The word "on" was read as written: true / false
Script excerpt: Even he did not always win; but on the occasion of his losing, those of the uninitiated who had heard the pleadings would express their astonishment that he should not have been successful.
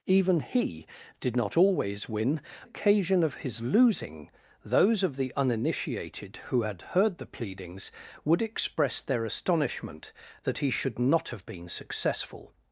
false